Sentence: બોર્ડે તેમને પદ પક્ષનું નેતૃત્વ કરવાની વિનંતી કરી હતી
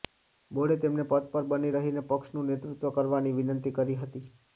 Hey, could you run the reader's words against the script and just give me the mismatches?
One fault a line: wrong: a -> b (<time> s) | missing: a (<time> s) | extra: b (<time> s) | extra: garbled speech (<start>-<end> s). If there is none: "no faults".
extra: પર બની રહીને (1.3 s)